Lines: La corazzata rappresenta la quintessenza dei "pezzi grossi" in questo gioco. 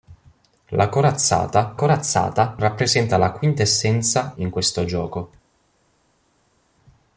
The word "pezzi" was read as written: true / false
false